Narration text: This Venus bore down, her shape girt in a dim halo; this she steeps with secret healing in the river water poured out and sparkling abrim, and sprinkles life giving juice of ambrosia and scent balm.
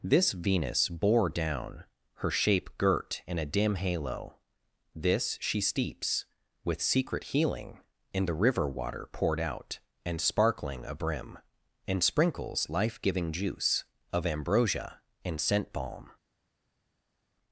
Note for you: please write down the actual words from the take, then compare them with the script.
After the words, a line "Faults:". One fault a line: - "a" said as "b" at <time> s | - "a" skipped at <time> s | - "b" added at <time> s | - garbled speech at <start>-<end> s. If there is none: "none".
This Venus bore down, her shape girt in a dim halo; this she steeps with secret healing in the river water poured out and sparkling abrim, and sprinkles life giving juice of ambrosia and scent balm.
Faults:
none